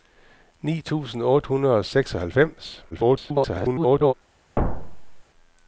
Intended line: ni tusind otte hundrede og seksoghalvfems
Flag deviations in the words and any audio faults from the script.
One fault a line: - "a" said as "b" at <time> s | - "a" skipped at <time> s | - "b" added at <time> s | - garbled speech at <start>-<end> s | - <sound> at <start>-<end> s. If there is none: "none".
- garbled speech at 2.9-4.1 s
- thud at 4.6-5.2 s